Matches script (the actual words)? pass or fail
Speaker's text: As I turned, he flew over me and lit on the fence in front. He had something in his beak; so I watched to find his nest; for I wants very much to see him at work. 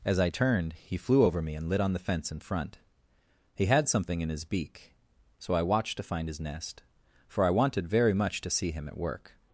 fail